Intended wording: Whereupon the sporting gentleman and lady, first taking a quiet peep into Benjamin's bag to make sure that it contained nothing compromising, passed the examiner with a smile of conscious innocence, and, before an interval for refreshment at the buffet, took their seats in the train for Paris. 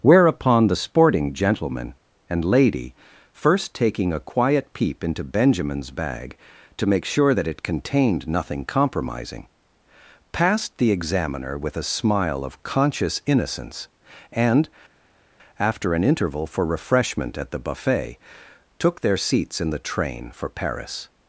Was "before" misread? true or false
true